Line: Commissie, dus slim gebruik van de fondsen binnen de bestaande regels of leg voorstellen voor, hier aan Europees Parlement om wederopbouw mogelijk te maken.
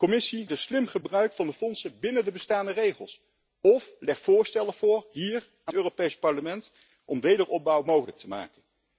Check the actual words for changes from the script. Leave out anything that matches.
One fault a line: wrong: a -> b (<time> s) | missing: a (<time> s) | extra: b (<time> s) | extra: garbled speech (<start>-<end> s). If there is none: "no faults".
no faults